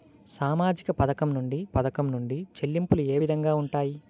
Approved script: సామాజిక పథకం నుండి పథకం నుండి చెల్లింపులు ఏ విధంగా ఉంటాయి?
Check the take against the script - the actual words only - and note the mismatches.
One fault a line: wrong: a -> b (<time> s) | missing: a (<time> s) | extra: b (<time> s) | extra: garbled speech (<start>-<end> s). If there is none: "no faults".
no faults